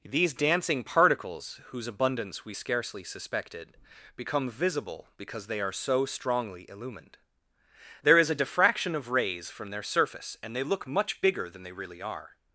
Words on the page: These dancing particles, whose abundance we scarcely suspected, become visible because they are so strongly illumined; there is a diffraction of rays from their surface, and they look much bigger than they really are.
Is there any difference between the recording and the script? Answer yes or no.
no